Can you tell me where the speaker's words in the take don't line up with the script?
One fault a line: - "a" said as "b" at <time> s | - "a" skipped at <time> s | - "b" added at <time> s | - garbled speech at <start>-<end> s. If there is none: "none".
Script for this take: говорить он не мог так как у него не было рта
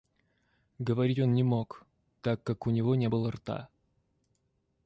none